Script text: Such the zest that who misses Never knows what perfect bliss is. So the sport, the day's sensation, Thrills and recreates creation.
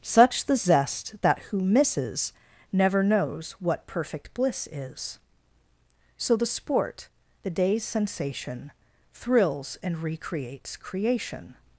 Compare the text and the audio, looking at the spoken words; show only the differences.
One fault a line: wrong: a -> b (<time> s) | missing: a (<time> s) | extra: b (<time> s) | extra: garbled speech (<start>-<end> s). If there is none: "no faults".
no faults